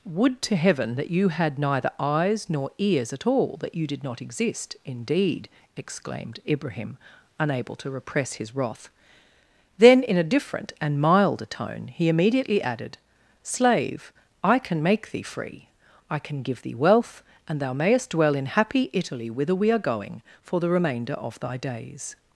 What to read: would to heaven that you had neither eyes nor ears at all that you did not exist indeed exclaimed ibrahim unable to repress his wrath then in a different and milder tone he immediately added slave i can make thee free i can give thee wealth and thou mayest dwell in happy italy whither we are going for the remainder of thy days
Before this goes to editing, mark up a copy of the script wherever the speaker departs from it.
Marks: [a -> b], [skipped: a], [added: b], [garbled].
would to heaven that you had neither eyes nor ears at all that you did not exist indeed exclaimed ibrahim unable to repress his wrath then in a different and milder tone he immediately added slave i can make thee free i can give thee wealth and thou mayest dwell in happy italy whither we are going for the remainder of thy days